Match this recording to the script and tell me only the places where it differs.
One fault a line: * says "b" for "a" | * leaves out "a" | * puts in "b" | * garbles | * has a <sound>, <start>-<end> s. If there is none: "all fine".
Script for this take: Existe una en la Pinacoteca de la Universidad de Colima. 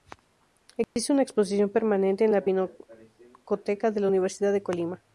* has a dropout, 0.8-1.0 s
* puts in "exposición permanente"